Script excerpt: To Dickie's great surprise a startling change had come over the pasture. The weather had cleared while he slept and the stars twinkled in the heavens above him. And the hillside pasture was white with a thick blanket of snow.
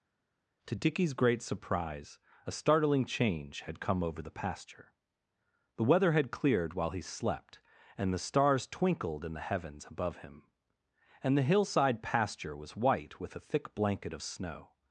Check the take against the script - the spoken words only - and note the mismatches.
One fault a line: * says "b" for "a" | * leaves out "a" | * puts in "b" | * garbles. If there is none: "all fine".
all fine